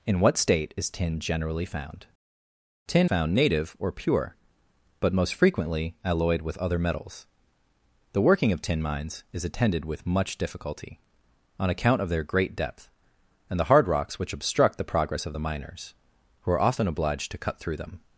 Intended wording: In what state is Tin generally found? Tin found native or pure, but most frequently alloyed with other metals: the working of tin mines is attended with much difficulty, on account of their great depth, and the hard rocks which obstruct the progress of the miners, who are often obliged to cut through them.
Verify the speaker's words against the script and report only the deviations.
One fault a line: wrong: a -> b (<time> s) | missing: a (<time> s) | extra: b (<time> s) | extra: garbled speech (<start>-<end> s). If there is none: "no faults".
no faults